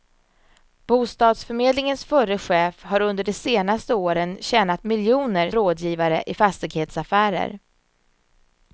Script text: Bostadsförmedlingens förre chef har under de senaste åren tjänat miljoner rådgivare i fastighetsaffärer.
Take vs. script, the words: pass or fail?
pass